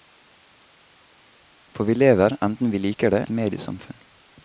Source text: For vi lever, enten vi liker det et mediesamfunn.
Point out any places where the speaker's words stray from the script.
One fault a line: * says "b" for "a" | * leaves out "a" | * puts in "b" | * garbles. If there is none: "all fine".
all fine